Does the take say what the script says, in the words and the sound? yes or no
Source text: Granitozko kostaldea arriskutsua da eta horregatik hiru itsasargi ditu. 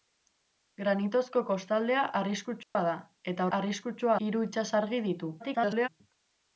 no